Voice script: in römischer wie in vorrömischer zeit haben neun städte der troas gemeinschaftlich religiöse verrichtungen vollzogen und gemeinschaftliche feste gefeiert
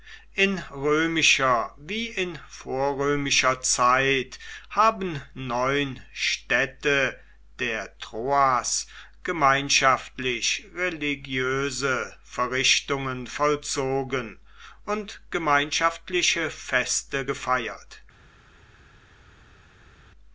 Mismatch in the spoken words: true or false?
false